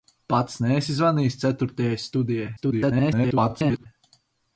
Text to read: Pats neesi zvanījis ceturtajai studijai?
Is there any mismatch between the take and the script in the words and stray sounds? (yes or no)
yes